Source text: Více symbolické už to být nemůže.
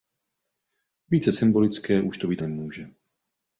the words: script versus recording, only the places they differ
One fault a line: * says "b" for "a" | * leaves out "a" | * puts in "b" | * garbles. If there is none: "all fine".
all fine